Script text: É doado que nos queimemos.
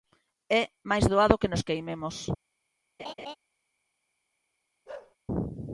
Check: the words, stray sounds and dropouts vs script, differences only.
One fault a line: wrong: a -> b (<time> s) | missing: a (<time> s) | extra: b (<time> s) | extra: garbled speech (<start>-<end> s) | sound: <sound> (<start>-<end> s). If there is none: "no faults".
extra: máis (0.9 s)
sound: laugh (3.0-3.4 s)
sound: bark (4.9-5.2 s)